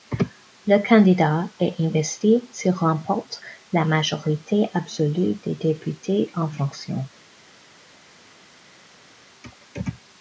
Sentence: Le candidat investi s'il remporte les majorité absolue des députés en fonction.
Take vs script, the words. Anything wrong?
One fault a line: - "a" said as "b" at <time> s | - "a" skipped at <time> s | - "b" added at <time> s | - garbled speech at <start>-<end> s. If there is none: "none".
- "est" added at 1.6 s
- "les" said as "la" at 3.7 s